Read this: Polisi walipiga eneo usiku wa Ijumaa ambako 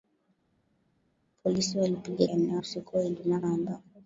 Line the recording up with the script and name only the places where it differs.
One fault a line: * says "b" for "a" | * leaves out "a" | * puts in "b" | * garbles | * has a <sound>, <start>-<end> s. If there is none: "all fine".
all fine